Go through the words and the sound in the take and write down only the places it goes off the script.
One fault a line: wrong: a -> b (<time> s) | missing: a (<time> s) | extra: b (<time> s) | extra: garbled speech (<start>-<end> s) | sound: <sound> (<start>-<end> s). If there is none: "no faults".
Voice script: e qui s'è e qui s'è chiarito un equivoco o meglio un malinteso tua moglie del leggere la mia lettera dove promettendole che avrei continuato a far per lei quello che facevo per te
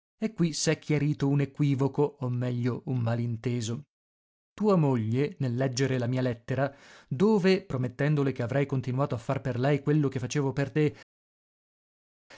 missing: e qui s'è (0.8 s)
wrong: del -> nel (5.4 s)